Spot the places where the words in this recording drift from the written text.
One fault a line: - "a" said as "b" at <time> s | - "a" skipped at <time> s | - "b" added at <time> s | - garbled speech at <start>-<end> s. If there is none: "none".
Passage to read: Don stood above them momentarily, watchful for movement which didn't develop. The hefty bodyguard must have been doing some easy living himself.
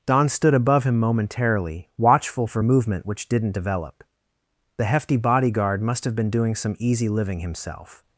- "them" said as "him" at 0.8 s